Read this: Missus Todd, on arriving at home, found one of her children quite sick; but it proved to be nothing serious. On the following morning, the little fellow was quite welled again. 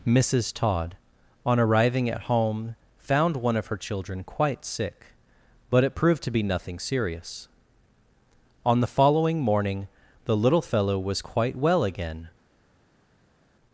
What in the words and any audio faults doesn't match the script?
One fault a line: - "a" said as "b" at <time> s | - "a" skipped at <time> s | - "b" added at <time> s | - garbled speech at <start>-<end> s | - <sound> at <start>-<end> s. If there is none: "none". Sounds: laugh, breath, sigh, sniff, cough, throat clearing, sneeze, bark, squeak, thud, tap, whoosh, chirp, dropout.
- "welled" said as "well" at 11.6 s